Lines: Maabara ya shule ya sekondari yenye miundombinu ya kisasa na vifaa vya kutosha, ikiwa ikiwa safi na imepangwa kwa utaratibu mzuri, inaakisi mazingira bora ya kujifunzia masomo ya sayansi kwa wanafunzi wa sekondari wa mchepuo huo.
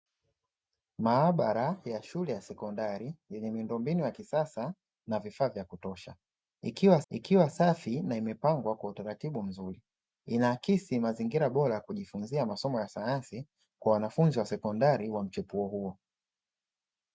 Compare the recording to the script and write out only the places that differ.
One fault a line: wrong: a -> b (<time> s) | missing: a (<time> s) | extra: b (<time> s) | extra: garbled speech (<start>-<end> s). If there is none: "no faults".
no faults